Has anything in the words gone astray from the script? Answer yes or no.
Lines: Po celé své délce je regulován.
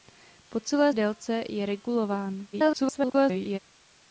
yes